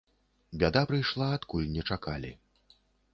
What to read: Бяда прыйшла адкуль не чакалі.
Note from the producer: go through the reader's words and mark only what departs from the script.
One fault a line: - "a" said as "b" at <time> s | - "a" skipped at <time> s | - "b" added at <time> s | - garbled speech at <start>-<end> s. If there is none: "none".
none